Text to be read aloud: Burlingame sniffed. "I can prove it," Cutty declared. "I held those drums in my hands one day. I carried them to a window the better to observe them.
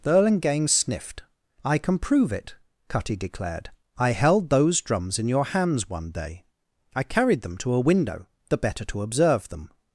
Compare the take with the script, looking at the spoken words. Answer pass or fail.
fail